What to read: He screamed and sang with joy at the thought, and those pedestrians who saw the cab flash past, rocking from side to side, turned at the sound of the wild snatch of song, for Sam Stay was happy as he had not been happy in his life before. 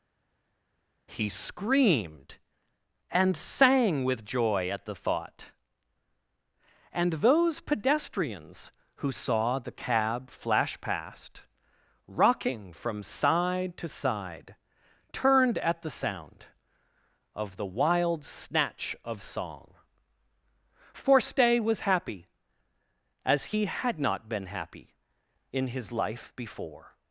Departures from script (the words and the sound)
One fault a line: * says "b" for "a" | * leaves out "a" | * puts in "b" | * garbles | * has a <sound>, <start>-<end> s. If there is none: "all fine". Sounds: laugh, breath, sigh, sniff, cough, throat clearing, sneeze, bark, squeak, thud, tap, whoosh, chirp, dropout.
* leaves out "Sam"